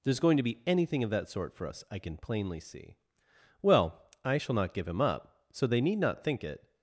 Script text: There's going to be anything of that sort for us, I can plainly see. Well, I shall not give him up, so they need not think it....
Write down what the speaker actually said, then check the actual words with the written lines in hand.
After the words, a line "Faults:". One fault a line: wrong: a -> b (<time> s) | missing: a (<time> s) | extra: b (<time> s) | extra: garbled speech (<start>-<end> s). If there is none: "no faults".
There's going to be anything of that sort for us, I can plainly see. Well, I shall not give him up, so they need not think it....
Faults:
no faults